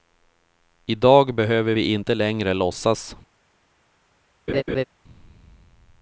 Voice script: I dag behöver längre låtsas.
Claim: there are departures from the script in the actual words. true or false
true